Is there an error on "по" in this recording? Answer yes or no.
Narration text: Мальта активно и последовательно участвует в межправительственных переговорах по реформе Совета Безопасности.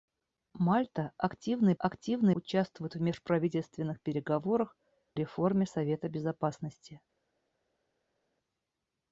yes